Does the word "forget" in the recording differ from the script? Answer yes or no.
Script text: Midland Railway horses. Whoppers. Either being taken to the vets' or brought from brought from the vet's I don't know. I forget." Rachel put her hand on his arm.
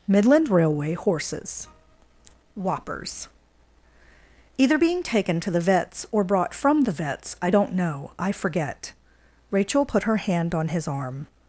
no